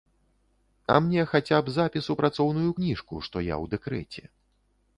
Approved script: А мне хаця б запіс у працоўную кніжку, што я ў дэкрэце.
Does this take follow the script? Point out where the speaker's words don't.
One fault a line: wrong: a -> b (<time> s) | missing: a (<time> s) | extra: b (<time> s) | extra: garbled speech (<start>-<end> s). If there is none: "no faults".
no faults